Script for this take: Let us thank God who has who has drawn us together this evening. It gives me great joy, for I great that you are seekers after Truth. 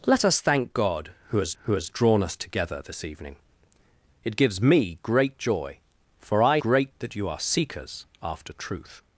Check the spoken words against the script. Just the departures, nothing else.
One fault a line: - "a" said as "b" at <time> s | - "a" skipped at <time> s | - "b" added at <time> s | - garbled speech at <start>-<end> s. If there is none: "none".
none